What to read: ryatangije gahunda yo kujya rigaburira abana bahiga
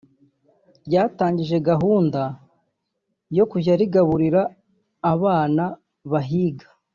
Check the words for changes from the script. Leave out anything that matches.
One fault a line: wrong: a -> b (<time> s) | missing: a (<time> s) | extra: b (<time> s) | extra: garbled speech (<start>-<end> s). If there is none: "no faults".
no faults